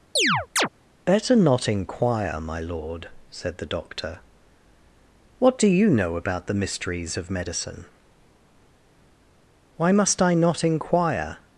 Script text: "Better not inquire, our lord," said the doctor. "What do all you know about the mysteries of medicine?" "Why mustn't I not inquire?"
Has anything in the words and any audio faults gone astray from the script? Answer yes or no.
yes